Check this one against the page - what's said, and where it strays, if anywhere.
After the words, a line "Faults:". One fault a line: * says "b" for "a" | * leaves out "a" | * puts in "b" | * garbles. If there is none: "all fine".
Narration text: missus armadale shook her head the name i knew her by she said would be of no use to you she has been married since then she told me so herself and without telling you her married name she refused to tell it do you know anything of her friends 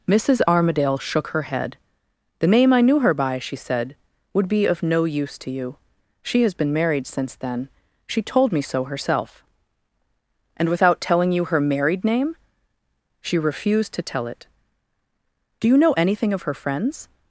missus armadale shook her head the name i knew her by she said would be of no use to you she has been married since then she told me so herself and without telling you her married name she refused to tell it do you know anything of her friends
Faults:
all fine